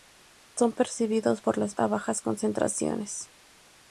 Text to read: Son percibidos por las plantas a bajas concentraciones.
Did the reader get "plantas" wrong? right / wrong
wrong